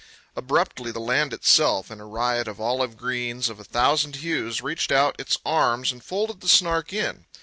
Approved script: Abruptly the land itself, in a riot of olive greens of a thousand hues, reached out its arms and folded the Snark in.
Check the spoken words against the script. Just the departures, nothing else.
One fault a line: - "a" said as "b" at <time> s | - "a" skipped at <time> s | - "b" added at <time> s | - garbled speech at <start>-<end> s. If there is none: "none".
none